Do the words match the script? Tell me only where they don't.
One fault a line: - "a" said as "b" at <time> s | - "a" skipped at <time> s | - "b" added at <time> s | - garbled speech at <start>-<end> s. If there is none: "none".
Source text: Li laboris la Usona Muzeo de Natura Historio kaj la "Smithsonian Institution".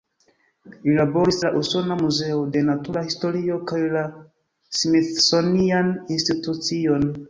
none